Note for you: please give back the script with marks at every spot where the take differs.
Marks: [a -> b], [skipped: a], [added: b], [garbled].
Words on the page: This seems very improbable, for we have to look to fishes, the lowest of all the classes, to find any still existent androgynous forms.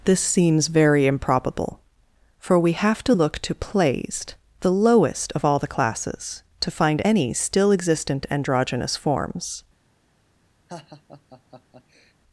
This seems very improbable, for we have to look to [fishes, -> plaised] the lowest of all the classes, to find any still existent androgynous forms.